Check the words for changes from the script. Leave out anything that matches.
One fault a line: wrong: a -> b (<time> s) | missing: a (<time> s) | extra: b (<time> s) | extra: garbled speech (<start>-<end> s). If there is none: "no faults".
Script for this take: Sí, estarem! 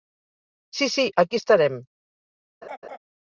extra: sí aquí (0.9 s)